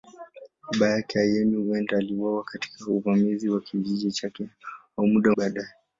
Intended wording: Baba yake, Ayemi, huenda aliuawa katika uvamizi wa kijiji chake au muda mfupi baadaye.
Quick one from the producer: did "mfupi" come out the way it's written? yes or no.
no